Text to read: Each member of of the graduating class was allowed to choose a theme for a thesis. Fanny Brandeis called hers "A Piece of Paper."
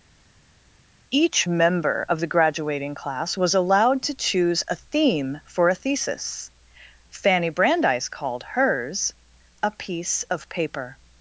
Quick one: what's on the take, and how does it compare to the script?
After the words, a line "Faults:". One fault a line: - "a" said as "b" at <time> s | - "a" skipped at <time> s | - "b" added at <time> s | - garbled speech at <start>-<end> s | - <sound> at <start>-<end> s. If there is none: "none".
Each member of the graduating class was allowed to choose a theme for a thesis. Fanny Brandeis called hers "A Piece of Paper."
Faults:
- "of" skipped at 2.2 s